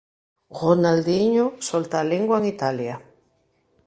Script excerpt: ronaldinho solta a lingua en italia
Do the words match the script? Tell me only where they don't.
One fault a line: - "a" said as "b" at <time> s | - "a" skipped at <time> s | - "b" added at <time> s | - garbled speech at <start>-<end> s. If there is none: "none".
none